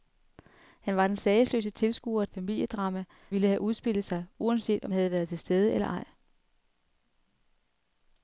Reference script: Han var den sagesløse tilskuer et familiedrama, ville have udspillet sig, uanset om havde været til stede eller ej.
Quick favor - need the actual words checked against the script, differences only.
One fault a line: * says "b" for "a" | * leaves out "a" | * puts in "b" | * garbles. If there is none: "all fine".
all fine